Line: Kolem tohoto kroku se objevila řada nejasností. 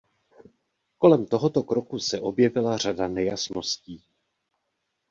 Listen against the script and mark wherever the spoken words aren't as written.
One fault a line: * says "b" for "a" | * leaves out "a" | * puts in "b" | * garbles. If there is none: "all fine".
all fine